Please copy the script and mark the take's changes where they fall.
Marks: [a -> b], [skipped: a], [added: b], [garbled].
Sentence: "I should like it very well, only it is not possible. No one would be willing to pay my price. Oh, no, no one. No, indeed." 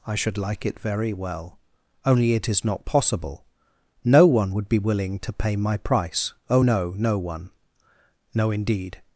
"I should like it very well, only it is not possible. No one would be willing to pay my price. Oh, no, no one. No, indeed."